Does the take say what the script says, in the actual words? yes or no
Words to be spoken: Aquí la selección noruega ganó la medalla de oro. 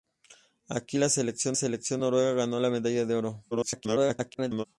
no